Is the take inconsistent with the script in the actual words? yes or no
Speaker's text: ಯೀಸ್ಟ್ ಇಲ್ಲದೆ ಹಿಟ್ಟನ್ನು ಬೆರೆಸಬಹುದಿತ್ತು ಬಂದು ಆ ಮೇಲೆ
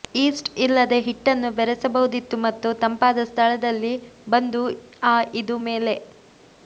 yes